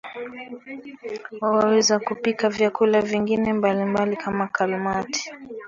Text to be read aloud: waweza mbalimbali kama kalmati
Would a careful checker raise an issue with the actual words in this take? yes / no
yes